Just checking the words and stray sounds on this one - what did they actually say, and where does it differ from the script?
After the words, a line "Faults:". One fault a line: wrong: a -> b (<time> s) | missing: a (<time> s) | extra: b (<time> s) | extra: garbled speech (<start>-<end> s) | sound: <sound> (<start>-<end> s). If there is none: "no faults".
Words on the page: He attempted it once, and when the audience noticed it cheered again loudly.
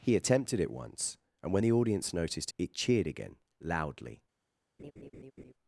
He attempted it once, and when the audience noticed it cheered again loudly.
Faults:
sound: laugh (4.8-5.5 s)